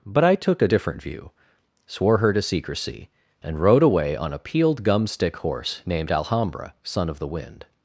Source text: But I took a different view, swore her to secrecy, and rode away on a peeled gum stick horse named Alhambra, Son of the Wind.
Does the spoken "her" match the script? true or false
true